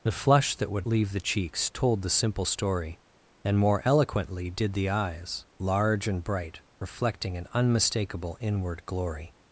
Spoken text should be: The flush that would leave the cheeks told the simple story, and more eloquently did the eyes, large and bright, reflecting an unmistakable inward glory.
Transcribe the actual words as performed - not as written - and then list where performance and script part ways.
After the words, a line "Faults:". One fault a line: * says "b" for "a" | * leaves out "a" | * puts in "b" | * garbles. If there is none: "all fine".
The flush that would leave the cheeks told the simple story, and more eloquently did the eyes, large and bright, reflecting an unmistakable inward glory.
Faults:
all fine